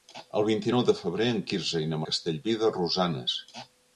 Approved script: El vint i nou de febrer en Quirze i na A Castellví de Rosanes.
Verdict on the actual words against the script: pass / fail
pass